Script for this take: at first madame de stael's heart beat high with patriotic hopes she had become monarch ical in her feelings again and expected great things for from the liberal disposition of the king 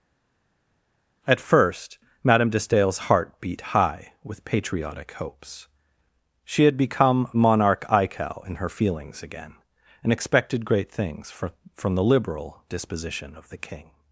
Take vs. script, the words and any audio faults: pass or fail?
pass